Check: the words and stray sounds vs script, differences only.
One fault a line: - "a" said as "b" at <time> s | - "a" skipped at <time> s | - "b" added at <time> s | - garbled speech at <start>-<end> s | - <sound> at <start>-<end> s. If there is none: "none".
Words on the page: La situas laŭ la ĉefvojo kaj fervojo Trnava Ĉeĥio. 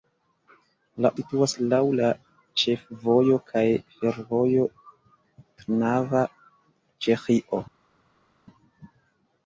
none